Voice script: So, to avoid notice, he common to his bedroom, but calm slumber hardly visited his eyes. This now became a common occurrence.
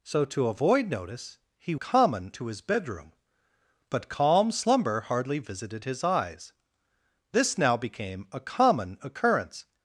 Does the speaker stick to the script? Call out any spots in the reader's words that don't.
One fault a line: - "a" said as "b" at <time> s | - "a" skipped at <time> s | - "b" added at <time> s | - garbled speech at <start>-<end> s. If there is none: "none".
none